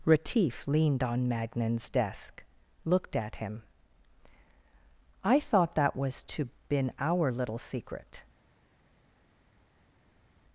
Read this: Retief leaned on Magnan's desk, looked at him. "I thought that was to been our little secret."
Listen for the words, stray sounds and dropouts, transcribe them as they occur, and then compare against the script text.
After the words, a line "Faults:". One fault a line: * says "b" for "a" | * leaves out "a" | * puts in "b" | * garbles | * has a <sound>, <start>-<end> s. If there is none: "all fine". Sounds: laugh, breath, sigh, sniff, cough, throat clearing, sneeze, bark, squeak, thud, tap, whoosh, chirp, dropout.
Retief leaned on Magnan's desk, looked at him. "I thought that was to been our little secret."
Faults:
all fine